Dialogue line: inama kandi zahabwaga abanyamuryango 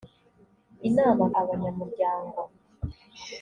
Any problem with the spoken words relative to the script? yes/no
yes